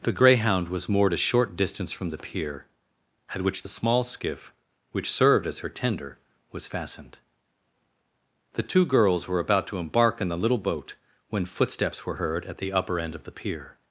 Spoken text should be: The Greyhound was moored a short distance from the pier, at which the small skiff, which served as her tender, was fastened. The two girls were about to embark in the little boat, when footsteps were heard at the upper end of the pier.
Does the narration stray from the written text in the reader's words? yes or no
no